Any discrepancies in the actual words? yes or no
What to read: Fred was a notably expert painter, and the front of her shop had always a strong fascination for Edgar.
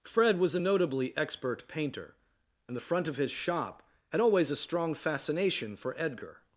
yes